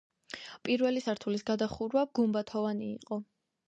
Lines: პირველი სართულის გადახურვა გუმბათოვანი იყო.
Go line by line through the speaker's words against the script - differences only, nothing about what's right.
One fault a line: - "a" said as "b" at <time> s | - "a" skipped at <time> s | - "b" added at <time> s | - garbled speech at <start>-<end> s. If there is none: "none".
none